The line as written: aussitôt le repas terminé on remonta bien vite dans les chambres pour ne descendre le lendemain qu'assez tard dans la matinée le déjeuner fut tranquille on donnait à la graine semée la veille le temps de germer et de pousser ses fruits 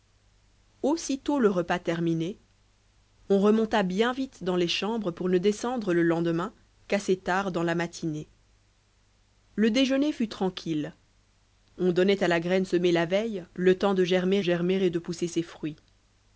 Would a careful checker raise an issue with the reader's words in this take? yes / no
yes